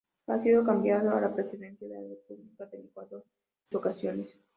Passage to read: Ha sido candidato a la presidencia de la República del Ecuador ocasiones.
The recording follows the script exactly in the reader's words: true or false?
true